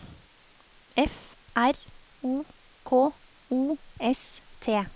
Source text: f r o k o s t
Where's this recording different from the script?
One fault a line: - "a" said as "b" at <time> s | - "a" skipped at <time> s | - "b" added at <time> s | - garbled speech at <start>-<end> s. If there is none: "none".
none